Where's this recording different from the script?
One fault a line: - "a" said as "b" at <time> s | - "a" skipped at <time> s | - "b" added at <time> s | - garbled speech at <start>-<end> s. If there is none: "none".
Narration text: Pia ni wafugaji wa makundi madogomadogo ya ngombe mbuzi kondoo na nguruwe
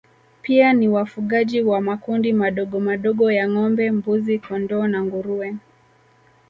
none